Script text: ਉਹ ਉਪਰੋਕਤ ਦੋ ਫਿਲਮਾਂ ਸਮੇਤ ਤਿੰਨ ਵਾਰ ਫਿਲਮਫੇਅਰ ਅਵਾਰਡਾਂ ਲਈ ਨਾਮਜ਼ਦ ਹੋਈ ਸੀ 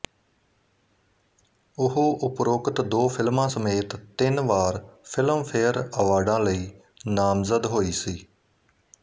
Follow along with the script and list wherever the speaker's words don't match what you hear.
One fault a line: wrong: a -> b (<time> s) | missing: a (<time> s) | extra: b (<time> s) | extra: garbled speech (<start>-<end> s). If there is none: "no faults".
no faults